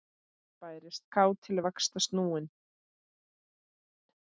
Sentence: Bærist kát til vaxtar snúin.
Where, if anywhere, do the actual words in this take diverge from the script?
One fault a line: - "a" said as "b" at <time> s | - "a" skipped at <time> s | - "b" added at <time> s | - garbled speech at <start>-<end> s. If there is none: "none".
none